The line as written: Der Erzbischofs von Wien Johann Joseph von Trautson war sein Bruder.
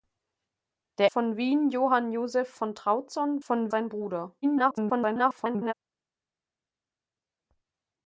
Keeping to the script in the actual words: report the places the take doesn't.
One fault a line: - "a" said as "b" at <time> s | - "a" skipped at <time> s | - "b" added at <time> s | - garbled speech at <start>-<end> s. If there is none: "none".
- "Erzbischofs" skipped at 1.1 s
- "war" said as "von" at 3.4 s
- garbled speech at 4.4-5.7 s